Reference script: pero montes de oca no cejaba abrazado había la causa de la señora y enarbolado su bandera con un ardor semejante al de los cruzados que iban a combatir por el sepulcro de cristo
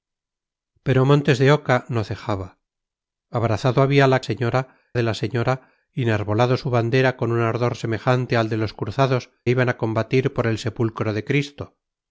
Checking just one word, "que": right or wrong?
wrong